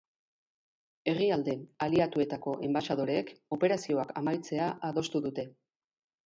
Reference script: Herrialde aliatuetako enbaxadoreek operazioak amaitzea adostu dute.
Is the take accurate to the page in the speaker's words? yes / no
yes